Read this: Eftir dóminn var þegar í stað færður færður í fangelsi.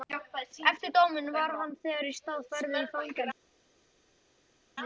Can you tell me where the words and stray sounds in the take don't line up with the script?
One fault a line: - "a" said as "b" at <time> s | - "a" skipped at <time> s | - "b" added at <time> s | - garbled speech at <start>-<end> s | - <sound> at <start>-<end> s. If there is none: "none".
- "hann" added at 1.6 s
- "færður" skipped at 2.8 s